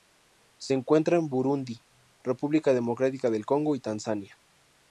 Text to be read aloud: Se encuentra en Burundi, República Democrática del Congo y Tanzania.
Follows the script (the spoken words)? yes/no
yes